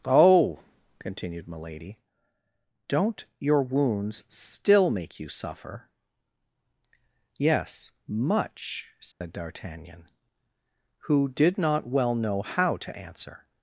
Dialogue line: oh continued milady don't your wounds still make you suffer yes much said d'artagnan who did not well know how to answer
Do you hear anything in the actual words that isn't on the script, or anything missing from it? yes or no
no